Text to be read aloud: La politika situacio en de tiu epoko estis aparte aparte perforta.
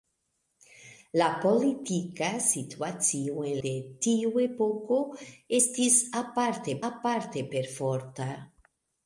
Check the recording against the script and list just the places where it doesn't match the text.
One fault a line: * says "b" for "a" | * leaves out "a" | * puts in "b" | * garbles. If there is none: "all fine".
all fine